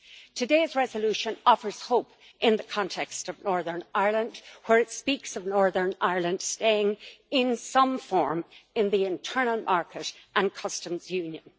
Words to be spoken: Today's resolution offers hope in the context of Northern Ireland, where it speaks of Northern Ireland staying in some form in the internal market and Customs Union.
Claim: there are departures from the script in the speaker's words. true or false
false